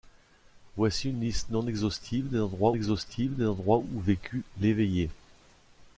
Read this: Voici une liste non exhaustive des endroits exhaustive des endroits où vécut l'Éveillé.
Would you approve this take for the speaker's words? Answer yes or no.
yes